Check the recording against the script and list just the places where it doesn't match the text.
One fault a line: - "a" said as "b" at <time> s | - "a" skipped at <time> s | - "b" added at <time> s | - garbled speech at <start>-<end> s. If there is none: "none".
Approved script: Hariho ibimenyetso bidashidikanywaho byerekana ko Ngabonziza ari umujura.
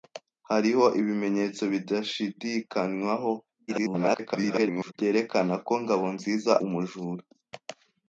- garbled speech at 3.7-4.9 s
- "ari" skipped at 6.5 s